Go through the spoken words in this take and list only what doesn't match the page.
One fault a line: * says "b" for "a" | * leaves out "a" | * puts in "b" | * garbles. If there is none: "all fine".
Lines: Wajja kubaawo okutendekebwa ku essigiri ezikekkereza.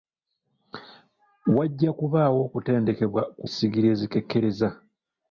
all fine